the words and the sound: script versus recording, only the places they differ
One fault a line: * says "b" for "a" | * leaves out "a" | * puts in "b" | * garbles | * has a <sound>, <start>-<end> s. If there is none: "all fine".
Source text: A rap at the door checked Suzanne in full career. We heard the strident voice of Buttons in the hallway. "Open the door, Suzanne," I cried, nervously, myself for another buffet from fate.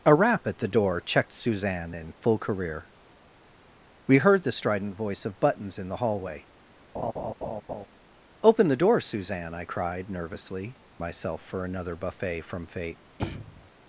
* has a laugh, 6.9-7.9 s
* has a throat clearing, 13.2-13.7 s